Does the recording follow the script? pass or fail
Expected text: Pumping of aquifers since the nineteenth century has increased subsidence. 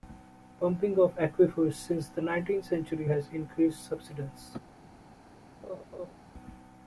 pass